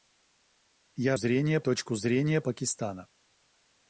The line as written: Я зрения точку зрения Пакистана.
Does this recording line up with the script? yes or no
yes